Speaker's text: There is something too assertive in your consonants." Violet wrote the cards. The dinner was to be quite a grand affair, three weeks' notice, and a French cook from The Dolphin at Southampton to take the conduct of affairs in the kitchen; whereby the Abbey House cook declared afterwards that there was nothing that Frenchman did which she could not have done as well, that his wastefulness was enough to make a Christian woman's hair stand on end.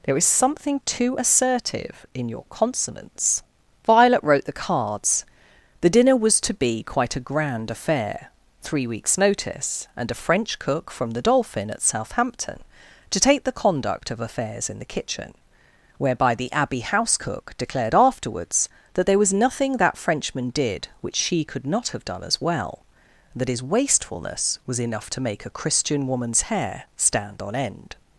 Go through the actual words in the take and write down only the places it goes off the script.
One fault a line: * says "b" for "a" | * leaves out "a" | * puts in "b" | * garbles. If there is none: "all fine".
all fine